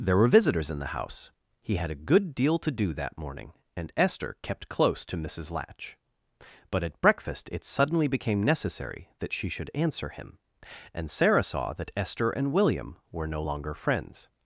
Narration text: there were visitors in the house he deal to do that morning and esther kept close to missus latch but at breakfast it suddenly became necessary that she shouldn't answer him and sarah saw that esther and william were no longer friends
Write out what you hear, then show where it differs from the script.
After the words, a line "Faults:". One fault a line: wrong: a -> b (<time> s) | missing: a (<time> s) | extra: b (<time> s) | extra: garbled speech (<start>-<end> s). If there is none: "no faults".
there were visitors in the house he had a good deal to do that morning and esther kept close to missus latch but at breakfast it suddenly became necessary that she should answer him and sarah saw that esther and william were no longer friends
Faults:
extra: had a good (1.8 s)
wrong: shouldn't -> should (9.5 s)